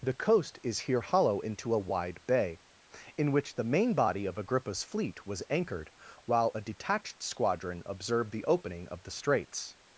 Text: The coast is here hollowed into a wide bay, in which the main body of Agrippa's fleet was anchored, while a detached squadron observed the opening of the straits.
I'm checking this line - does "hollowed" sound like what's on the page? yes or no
no